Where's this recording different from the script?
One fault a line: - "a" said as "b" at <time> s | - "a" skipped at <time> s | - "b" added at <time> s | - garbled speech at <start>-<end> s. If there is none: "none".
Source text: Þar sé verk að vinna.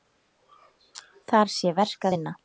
none